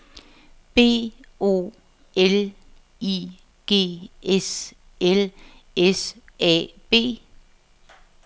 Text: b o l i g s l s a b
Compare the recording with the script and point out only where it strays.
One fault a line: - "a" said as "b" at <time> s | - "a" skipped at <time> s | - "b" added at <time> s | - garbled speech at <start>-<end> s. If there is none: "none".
none